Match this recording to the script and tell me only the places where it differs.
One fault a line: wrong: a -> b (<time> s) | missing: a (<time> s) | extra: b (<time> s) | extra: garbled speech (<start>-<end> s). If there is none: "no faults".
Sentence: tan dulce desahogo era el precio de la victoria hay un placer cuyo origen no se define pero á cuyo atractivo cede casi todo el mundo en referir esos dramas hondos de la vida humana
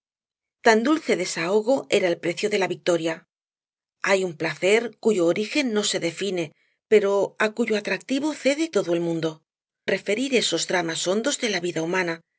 missing: casi (8.7 s)
missing: en (9.4 s)